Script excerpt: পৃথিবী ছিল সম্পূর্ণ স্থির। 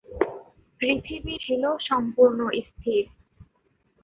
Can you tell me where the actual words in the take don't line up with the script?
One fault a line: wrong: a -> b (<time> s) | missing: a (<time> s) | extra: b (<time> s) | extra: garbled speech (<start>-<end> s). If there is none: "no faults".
no faults